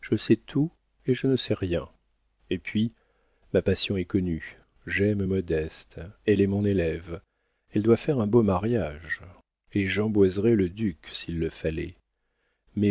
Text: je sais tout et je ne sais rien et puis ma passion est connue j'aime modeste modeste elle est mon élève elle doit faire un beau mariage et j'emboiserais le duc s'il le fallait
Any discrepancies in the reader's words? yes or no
yes